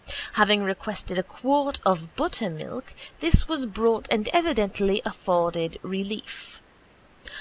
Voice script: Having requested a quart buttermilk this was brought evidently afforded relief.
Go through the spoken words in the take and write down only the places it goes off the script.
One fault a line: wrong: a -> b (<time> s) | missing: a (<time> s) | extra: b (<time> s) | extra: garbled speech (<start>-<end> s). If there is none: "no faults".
extra: of (1.9 s)
extra: and (4.1 s)